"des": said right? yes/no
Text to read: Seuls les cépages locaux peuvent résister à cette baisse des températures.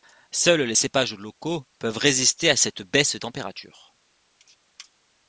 no